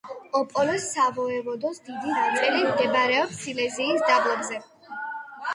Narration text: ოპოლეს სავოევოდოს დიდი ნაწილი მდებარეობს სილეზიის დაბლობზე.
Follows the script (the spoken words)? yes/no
yes